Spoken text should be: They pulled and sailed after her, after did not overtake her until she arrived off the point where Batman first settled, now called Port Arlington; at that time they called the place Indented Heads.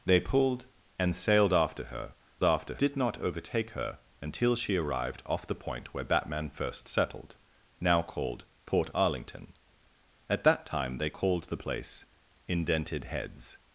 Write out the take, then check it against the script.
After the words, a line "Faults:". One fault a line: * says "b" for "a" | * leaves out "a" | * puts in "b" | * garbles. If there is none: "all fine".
They pulled and sailed after her, after did not overtake her until she arrived off the point where Batman first settled, now called Port Arlington; at that time they called the place Indented Heads.
Faults:
all fine